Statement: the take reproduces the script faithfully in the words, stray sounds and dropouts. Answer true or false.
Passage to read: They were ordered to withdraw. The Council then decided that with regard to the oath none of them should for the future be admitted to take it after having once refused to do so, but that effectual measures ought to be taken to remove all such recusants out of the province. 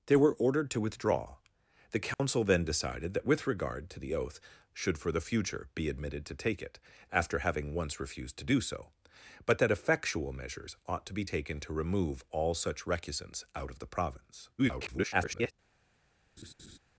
false